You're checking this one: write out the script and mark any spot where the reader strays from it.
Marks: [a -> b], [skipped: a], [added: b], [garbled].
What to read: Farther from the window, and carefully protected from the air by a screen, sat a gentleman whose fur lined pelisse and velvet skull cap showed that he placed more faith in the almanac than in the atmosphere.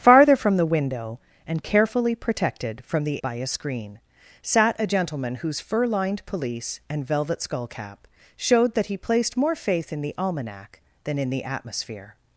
Farther from the window, and carefully protected from the [skipped: air] by a screen, sat a gentleman whose fur lined pelisse and velvet skull cap showed that he placed more faith in the almanac than in the atmosphere.